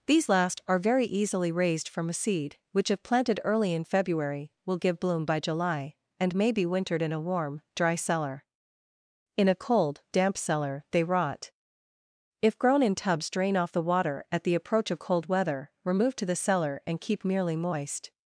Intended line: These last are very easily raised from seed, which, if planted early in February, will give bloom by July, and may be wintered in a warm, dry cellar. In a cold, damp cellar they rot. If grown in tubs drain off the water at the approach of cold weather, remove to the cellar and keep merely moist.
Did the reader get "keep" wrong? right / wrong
right